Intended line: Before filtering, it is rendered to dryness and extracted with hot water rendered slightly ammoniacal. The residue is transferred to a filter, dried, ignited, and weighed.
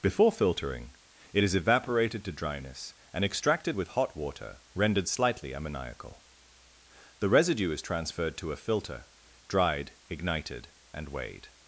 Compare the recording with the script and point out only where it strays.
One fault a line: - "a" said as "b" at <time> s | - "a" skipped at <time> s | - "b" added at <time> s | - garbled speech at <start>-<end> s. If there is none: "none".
- "rendered" said as "evaporated" at 1.5 s